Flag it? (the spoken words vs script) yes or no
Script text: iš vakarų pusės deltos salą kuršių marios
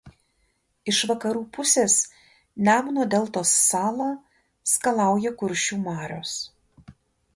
yes